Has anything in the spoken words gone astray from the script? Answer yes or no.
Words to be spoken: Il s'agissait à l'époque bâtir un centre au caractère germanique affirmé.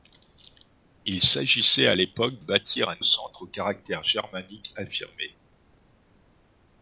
no